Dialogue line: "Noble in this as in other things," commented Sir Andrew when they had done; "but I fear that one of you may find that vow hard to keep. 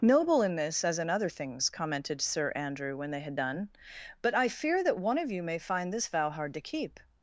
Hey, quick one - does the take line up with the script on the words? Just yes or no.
no